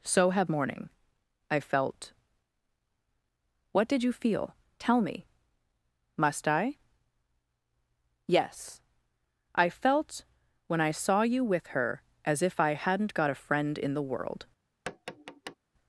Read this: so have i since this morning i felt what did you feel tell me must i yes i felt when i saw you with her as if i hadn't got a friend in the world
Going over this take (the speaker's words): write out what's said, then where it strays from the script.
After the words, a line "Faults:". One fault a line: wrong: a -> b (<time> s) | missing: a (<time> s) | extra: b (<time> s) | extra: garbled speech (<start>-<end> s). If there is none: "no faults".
so have morning i felt what did you feel tell me must i yes i felt when i saw you with her as if i hadn't got a friend in the world
Faults:
missing: i since this (0.5 s)